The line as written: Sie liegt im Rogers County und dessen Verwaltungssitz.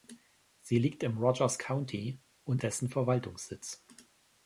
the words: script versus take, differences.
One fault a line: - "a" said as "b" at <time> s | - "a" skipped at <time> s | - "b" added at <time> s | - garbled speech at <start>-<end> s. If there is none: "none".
none